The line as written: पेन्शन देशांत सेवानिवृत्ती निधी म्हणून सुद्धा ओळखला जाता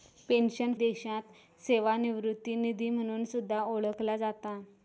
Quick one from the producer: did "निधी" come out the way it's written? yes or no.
yes